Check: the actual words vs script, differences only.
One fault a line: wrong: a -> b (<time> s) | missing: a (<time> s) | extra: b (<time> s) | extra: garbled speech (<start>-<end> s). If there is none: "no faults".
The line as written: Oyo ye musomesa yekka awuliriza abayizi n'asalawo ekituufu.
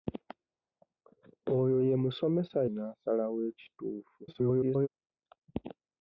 missing: yekka awuliriza abayizi (2.6 s)
extra: garbled speech (4.3-4.9 s)